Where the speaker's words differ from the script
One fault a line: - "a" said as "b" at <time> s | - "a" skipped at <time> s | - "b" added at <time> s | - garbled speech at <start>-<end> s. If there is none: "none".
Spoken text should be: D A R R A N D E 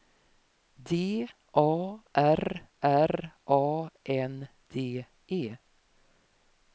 none